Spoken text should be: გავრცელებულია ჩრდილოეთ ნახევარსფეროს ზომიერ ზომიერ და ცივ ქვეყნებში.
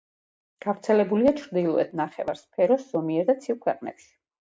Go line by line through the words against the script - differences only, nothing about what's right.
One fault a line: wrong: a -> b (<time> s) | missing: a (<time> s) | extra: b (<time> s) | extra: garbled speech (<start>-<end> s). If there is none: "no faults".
missing: ზომიერ (3.3 s)